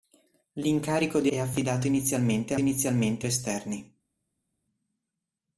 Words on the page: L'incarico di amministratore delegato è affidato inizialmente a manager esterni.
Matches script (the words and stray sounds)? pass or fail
fail